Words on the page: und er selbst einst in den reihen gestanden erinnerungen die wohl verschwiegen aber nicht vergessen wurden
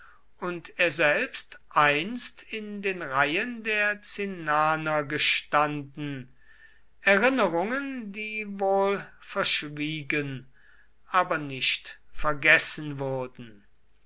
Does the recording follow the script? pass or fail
fail